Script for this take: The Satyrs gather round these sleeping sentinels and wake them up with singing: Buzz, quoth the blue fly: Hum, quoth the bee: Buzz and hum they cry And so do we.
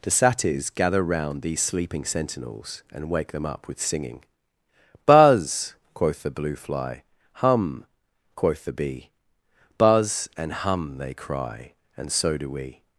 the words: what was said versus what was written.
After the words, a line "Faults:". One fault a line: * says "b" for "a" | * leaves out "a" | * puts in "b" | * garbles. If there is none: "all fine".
The Satyrs gather round these sleeping sentinels and wake them up with singing: Buzz, quoth the blue fly: Hum, quoth the bee: Buzz and hum they cry And so do we.
Faults:
all fine